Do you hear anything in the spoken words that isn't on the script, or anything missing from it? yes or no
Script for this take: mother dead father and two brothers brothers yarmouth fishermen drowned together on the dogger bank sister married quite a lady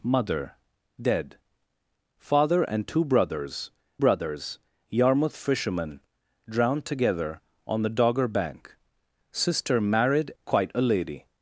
no